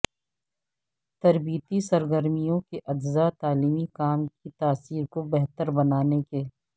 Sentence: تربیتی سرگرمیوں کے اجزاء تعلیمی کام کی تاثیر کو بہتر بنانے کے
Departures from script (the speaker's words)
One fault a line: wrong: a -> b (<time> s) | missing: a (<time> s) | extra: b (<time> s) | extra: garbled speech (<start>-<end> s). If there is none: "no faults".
no faults